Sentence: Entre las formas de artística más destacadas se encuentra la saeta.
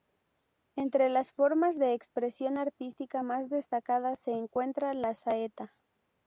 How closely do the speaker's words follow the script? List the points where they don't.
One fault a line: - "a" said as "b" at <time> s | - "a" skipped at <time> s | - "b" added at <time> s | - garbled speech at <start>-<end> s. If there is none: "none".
- "expresión" added at 1.9 s